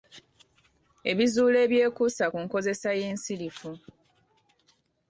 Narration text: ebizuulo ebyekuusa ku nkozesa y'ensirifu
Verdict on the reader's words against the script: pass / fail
pass